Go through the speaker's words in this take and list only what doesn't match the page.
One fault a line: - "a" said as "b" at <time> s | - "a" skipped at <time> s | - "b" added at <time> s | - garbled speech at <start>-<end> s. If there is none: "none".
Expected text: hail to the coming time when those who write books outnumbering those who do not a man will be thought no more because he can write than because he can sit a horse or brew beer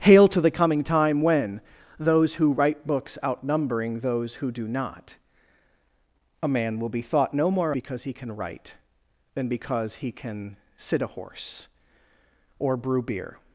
none